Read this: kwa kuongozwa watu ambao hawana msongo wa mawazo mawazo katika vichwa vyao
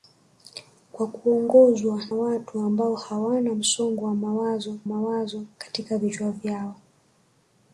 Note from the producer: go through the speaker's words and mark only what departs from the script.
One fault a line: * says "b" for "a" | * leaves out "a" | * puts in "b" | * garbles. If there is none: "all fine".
all fine